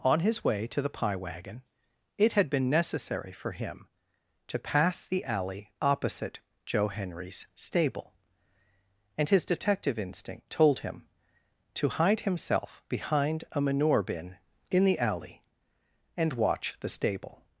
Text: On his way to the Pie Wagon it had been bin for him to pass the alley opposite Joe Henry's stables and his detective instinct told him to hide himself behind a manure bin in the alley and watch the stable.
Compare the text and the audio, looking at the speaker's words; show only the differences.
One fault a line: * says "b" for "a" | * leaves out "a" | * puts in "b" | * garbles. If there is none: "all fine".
* says "necessary" for "bin"
* says "stable" for "stables"